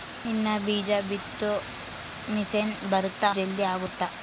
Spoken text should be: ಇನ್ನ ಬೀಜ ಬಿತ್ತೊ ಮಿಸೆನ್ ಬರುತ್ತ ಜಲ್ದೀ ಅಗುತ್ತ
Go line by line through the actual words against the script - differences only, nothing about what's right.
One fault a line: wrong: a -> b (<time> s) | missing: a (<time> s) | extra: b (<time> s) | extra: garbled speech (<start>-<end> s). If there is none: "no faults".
no faults